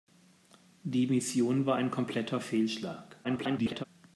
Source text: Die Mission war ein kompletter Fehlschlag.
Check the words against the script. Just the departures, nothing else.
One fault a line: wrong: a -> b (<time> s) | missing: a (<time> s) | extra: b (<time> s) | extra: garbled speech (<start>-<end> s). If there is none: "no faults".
extra: garbled speech (3.2-3.8 s)